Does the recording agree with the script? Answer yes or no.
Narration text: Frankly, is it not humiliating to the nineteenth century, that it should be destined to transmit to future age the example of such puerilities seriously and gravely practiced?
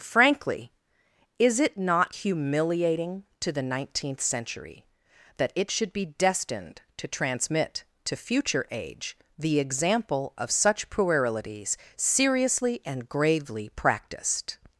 yes